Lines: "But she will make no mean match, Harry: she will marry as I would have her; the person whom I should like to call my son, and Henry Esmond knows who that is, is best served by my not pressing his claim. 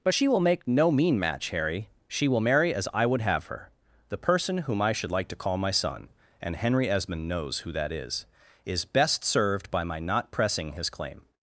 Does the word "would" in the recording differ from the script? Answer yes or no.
no